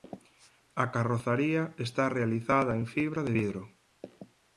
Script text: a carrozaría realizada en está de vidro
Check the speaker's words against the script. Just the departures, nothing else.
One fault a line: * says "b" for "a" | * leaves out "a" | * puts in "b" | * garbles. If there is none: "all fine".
* puts in "está"
* says "fibra" for "está"